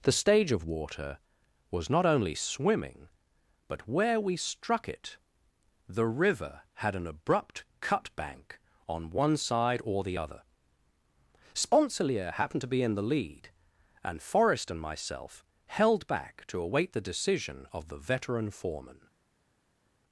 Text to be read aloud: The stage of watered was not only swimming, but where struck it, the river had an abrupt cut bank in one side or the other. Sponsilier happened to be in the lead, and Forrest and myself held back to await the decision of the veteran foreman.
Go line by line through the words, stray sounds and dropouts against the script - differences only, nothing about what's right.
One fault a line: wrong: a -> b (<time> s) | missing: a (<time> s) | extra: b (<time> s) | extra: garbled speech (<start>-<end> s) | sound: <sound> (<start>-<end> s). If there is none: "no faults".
wrong: watered -> water (0.7 s)
extra: we (4.2 s)
wrong: in -> on (8.9 s)